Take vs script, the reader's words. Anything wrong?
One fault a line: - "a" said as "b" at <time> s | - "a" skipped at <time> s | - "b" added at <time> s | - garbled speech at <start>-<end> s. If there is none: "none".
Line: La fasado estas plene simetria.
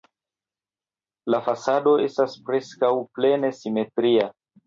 - "preskaŭ" added at 2.5 s